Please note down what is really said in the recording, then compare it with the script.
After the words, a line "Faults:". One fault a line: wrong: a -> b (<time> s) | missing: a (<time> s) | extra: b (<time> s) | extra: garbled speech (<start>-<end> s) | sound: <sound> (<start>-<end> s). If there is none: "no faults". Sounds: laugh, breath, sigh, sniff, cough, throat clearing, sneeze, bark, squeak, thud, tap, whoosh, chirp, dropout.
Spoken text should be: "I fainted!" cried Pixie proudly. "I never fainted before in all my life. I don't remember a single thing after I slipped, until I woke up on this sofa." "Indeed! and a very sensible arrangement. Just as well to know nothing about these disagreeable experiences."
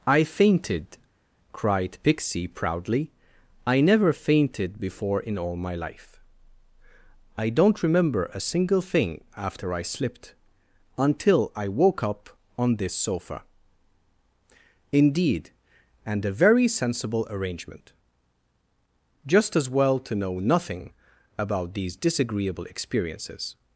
"I fainted!" cried Pixie proudly. "I never fainted before in all my life. I don't remember a single thing after I slipped, until I woke up on this sofa." "Indeed! and a very sensible arrangement. Just as well to know nothing about these disagreeable experiences."
Faults:
no faults